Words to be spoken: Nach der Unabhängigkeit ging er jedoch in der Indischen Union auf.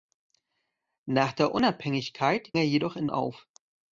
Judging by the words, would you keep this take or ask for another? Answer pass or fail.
fail